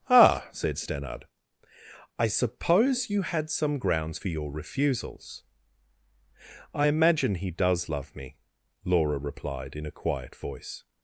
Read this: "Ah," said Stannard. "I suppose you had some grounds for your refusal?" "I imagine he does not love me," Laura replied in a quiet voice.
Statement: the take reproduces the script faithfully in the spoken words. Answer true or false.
false